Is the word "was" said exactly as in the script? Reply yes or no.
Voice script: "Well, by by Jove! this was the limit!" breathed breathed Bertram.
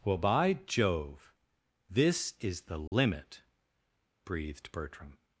no